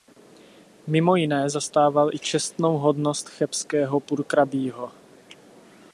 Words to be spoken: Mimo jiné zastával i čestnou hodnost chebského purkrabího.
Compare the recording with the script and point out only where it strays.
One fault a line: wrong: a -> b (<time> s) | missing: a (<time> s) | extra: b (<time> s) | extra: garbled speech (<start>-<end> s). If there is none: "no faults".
no faults